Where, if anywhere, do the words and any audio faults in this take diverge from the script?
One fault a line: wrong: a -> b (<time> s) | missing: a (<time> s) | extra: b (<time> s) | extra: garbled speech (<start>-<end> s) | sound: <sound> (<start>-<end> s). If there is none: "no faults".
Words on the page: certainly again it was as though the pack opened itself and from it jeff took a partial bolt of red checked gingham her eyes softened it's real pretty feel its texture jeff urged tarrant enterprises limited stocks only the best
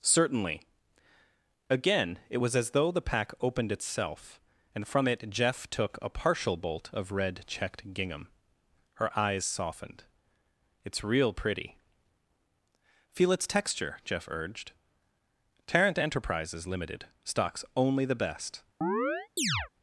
sound: chirp (18.8-19.7 s)